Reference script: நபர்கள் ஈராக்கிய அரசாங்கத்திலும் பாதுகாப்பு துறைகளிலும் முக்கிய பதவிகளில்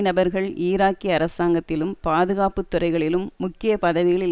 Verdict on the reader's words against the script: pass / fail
pass